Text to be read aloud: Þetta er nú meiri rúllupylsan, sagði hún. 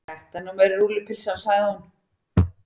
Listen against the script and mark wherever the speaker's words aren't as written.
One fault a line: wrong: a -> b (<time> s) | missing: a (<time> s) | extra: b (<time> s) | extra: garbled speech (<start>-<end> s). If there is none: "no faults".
no faults